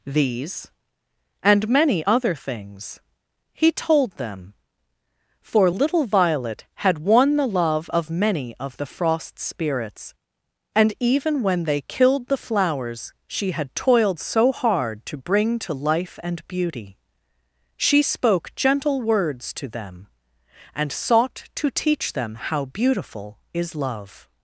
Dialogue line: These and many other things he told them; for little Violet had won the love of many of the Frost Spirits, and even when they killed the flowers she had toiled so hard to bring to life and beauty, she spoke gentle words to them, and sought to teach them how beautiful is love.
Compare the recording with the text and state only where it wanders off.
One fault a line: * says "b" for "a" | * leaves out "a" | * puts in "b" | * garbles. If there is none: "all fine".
all fine